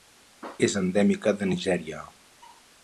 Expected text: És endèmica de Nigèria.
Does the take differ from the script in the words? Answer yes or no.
no